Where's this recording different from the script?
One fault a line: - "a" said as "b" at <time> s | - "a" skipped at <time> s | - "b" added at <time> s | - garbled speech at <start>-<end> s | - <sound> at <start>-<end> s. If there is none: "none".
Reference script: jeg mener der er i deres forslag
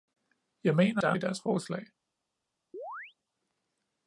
- chirp at 2.7-3.1 s